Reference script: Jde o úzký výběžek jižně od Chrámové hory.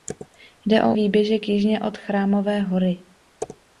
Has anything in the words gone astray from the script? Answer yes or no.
yes